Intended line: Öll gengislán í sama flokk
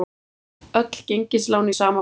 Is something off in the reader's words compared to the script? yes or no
no